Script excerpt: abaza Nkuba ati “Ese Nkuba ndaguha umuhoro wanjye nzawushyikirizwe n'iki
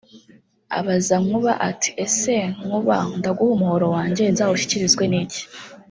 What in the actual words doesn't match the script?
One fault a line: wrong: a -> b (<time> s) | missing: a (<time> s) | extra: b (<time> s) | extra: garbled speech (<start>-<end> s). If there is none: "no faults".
no faults